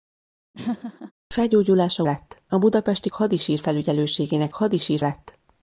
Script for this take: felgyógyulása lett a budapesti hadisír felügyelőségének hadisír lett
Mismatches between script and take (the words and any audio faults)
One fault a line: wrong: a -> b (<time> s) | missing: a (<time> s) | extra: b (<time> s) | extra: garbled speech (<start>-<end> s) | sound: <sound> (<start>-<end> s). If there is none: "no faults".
sound: laugh (0.5-1.1 s)